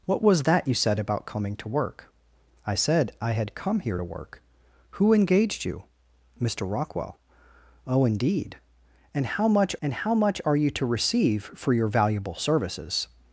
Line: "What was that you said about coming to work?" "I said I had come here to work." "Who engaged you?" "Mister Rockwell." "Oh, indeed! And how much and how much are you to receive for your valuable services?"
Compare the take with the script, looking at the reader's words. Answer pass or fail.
pass